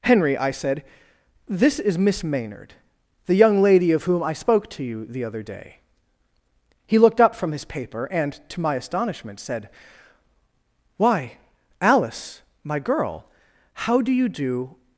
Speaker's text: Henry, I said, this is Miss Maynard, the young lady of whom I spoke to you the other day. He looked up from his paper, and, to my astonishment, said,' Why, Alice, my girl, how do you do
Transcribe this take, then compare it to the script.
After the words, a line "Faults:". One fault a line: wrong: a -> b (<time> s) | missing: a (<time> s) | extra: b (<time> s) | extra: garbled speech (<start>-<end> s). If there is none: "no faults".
Henry, I said, this is Miss Maynard, the young lady of whom I spoke to you the other day. He looked up from his paper, and, to my astonishment, said,' Why, Alice, my girl, how do you do
Faults:
no faults